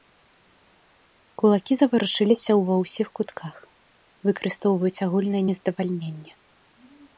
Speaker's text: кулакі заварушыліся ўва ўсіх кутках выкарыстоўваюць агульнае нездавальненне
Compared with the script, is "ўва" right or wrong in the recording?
right